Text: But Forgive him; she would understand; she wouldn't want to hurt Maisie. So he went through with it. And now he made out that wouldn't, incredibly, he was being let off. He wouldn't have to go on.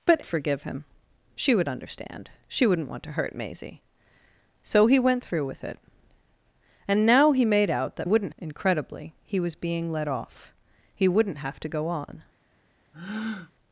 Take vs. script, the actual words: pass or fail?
pass